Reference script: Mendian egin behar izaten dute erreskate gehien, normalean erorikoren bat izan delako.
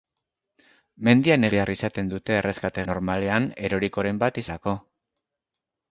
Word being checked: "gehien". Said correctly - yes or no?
no